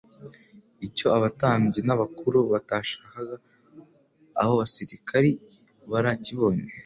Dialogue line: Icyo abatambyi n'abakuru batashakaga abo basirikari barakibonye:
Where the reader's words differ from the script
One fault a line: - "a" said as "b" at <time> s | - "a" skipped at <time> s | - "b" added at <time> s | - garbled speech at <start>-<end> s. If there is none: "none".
none